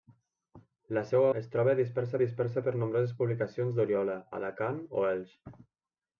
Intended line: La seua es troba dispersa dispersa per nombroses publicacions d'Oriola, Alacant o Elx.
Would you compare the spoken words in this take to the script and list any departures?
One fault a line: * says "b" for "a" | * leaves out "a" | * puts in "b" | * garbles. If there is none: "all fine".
all fine